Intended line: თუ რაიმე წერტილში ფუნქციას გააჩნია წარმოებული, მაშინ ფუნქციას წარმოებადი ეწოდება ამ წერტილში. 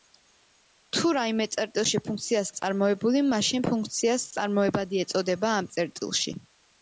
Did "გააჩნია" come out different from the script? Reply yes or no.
yes